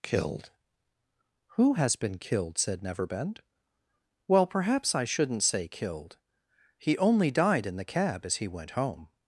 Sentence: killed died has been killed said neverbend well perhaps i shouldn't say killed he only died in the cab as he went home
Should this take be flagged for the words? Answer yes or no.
yes